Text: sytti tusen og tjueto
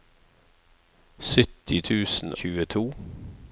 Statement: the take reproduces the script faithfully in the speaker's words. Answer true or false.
false